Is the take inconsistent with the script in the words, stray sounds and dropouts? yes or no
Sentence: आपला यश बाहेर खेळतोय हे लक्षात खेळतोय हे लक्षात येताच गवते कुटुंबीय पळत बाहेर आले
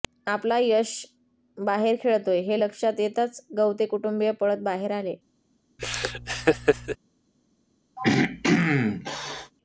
yes